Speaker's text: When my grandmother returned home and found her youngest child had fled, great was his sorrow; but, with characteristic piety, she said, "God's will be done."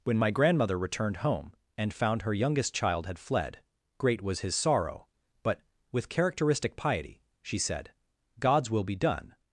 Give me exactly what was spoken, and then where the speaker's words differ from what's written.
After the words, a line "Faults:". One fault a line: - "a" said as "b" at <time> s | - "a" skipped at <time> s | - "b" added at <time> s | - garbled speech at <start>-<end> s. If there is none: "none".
When my grandmother returned home and found her youngest child had fled, great was his sorrow; but, with characteristic piety, she said, "God's will be done."
Faults:
none